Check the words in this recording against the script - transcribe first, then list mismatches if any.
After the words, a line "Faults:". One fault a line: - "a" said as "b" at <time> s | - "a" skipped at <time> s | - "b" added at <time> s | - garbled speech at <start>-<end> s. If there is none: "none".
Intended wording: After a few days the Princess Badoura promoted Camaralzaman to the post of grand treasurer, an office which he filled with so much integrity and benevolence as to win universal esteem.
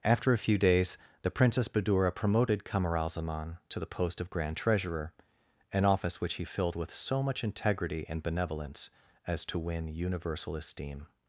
After a few days the Princess Badoura promoted Camaralzaman to the post of grand treasurer, an office which he filled with so much integrity and benevolence as to win universal esteem.
Faults:
none